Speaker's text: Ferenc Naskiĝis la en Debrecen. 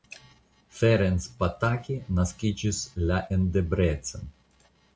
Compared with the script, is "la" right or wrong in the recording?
right